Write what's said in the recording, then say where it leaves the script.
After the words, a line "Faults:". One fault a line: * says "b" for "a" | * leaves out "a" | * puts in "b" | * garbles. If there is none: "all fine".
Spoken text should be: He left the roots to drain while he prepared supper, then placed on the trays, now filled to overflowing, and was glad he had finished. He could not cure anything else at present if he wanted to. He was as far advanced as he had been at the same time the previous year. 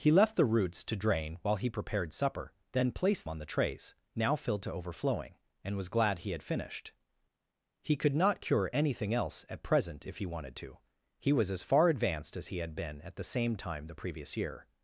He left the roots to drain while he prepared supper, then placed on the trays, now filled to overflowing, and was glad he had finished. He could not cure anything else at present if he wanted to. He was as far advanced as he had been at the same time the previous year.
Faults:
all fine